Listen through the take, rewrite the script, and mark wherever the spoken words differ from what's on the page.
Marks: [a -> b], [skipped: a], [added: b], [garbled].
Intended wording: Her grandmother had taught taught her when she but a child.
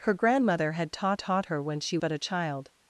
Her grandmother had taught taught her when she but a child.